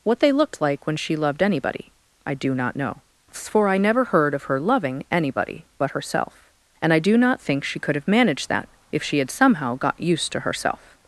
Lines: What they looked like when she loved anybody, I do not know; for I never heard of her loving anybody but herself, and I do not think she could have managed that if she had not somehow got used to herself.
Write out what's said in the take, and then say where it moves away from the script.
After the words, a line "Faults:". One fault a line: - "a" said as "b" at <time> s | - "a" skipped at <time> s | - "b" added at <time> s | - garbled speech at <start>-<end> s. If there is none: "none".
What they looked like when she loved anybody, I do not know; for I never heard of her loving anybody but herself, and I do not think she could have managed that if she had somehow got used to herself.
Faults:
- "not" skipped at 9.3 s